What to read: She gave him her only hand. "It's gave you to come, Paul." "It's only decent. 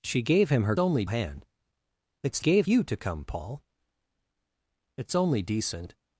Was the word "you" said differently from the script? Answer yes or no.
no